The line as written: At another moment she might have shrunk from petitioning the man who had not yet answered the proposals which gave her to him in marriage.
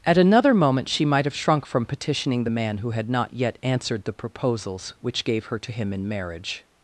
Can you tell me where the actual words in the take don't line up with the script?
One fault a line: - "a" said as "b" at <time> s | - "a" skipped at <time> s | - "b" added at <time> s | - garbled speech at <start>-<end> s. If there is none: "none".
none